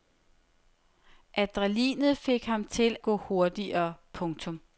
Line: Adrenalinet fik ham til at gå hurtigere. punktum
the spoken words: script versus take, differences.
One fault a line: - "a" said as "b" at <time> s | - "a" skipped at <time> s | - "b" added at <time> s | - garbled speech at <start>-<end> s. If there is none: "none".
- "at" skipped at 3.0 s